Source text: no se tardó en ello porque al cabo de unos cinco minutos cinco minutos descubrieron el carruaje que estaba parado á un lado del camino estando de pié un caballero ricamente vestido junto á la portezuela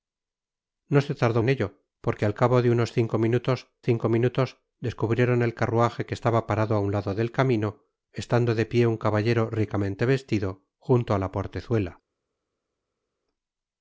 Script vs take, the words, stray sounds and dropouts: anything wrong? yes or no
no